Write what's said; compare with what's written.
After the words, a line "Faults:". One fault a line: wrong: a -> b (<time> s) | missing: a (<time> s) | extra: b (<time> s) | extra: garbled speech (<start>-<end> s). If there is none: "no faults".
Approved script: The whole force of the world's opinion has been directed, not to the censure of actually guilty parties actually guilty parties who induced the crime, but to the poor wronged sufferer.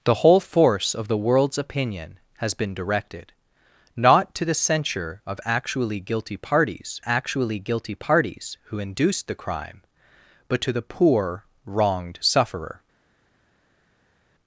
The whole force of the world's opinion has been directed, not to the censure of actually guilty parties actually guilty parties who induced the crime, but to the poor wronged sufferer.
Faults:
no faults